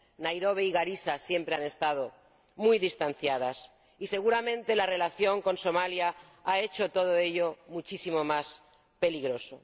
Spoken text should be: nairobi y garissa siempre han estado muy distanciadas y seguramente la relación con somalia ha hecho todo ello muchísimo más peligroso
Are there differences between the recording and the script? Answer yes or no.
no